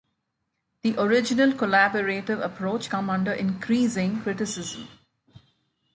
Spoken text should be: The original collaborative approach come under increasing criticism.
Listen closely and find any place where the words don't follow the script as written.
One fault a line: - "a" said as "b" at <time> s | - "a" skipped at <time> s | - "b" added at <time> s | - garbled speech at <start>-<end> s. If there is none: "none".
none